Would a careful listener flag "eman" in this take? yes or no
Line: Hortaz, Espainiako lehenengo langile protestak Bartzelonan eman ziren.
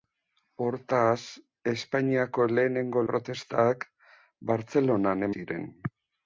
yes